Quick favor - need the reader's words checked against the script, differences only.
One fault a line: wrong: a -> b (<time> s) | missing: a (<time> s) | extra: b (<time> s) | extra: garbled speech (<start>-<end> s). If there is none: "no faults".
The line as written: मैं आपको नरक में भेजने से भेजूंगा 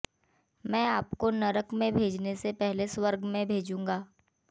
extra: पहले स्वर्ग में (2.5 s)